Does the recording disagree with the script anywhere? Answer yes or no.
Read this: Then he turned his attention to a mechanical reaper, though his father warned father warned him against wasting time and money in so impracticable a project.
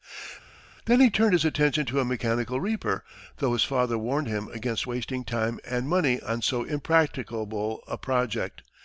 yes